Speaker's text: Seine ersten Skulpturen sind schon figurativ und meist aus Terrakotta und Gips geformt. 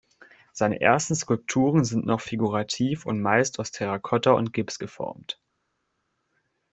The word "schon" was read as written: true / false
false